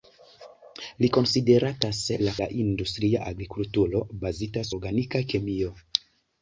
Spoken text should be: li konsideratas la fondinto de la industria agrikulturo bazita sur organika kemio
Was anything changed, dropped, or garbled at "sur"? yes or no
yes